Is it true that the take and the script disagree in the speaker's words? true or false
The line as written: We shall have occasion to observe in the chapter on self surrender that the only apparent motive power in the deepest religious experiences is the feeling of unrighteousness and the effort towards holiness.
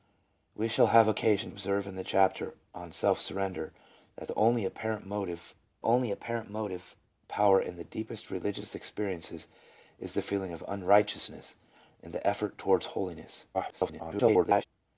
true